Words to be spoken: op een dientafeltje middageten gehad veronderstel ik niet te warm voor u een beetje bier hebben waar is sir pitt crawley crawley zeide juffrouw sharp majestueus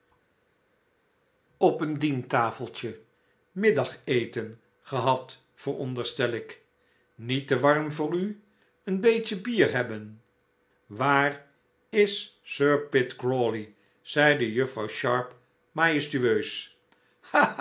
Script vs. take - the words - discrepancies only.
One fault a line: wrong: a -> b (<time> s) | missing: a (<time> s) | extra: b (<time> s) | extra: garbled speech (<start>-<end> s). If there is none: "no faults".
missing: crawley (13.7 s)